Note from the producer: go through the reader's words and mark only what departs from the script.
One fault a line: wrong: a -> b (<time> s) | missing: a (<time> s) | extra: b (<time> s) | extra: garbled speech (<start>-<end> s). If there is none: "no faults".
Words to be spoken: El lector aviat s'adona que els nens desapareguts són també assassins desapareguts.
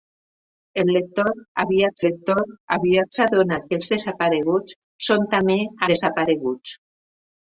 extra: lector aviat (2.0 s)
missing: nens (3.9 s)
missing: assassins (5.6 s)